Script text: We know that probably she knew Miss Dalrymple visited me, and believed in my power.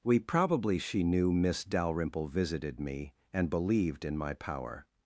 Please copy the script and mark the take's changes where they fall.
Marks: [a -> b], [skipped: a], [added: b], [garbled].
We [skipped: know that] probably she knew Miss Dalrymple visited me, and believed in my power.